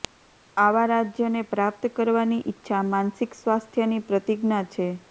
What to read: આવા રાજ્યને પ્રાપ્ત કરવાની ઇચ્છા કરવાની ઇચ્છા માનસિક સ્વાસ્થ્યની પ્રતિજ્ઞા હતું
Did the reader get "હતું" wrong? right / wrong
wrong